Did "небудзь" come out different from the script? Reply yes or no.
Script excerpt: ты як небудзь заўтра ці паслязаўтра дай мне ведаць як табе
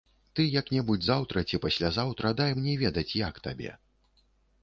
no